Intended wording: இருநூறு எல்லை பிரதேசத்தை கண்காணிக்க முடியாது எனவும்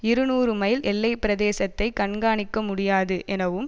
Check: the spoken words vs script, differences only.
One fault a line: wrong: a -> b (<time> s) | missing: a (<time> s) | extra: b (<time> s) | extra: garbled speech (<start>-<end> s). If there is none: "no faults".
extra: மைல் (0.5 s)